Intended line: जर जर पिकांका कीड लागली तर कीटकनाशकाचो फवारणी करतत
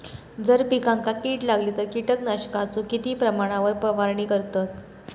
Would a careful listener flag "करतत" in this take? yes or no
no